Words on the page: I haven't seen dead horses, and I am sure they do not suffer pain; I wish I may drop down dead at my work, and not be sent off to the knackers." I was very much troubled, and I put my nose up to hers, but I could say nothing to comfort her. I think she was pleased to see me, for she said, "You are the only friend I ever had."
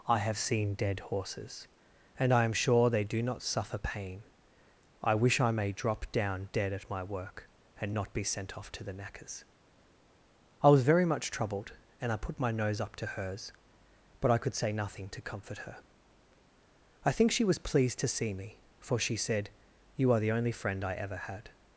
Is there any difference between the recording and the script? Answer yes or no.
yes